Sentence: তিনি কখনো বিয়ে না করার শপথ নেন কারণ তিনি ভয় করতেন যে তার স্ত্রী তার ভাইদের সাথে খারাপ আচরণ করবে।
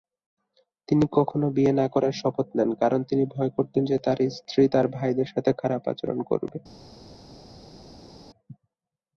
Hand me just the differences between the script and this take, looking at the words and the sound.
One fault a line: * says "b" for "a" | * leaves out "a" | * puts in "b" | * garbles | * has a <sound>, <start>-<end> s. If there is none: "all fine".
all fine